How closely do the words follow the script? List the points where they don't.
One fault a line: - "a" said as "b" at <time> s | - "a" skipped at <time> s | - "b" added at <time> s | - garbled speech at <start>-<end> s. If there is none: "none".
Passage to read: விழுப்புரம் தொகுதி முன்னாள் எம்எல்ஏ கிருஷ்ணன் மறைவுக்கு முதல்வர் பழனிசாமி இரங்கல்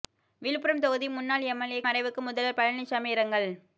- "கிருஷ்ணன்" skipped at 1.8 s